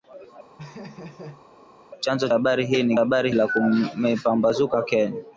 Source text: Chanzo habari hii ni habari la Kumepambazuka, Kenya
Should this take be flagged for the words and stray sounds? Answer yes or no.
yes